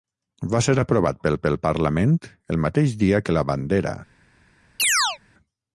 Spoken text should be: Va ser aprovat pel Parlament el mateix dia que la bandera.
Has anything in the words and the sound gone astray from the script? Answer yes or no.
yes